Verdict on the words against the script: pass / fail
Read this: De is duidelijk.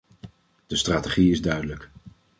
fail